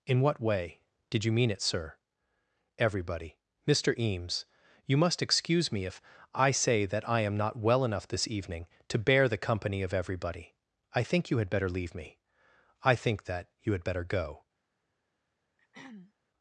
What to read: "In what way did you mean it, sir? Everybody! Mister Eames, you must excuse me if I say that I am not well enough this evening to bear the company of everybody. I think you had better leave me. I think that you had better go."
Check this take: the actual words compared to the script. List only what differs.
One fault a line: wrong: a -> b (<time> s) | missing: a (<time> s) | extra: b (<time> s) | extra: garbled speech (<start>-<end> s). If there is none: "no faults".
no faults